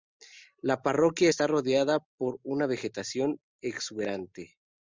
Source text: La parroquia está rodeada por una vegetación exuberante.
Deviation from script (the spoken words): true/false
false